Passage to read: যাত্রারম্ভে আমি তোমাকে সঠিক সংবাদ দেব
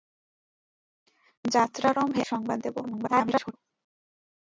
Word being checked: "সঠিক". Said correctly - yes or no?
no